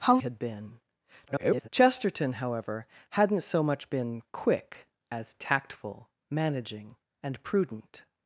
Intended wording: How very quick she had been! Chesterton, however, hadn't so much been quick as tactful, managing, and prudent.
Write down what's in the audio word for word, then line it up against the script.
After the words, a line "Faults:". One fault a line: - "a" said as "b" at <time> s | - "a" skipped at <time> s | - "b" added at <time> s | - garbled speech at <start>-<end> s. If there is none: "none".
How had been! [garbled] Chesterton, however, hadn't so much been quick as tactful, managing, and prudent.
Faults:
- "very quick she" skipped at 0.2 s
- garbled speech at 1.3-1.7 s